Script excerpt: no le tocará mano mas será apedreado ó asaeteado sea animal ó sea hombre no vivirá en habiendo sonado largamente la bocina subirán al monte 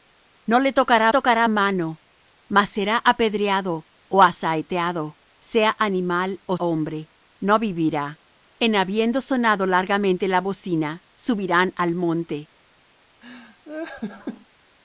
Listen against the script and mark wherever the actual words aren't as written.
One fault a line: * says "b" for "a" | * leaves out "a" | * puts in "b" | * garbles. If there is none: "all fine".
* puts in "tocará"
* leaves out "sea"